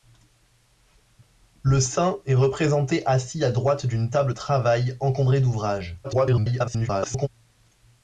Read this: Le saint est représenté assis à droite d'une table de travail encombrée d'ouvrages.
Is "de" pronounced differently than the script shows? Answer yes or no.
yes